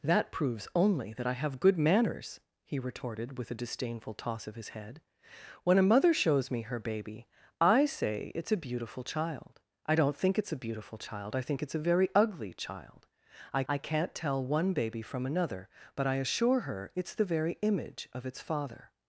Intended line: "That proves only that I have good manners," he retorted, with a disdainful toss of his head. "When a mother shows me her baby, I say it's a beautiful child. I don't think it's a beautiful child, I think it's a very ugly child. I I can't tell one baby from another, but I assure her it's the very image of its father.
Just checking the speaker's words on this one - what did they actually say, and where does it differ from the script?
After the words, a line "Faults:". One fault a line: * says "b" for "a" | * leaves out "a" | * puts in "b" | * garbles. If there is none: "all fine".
"That proves only that I have good manners," he retorted, with a disdainful toss of his head. "When a mother shows me her baby, I say it's a beautiful child. I don't think it's a beautiful child, I think it's a very ugly child. I I can't tell one baby from another, but I assure her it's the very image of its father.
Faults:
all fine